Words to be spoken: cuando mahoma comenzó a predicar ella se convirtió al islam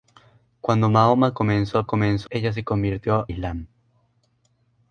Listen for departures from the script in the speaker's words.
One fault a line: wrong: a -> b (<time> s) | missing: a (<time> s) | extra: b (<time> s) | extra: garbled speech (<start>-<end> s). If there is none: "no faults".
wrong: predicar -> comenzó (1.8 s)
missing: al (3.3 s)